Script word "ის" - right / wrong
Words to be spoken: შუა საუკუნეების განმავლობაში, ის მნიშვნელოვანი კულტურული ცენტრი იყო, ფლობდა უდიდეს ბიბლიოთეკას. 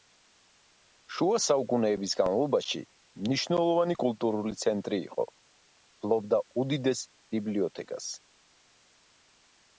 wrong